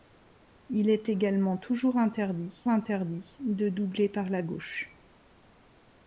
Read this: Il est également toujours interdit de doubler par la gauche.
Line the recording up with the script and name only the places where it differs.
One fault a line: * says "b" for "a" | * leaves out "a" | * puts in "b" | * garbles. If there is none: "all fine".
* puts in "interdit"